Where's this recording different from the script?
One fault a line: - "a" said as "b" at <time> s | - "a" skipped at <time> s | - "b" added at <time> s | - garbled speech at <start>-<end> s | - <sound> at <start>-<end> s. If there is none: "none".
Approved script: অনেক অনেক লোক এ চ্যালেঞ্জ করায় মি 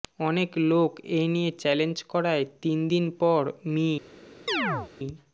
- "অনেক" skipped at 0.5 s
- "নিয়ে" added at 1.3 s
- "তিন দিন পর" added at 2.6 s
- chirp at 4.5-4.9 s